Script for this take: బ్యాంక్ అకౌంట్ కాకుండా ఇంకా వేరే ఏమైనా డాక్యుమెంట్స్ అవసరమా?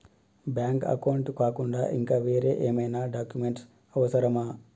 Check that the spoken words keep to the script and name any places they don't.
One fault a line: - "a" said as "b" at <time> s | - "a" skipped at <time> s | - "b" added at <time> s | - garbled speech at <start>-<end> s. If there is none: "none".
none